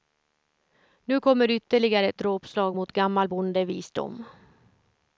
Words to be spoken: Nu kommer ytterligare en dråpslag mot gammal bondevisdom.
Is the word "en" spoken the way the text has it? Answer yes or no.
no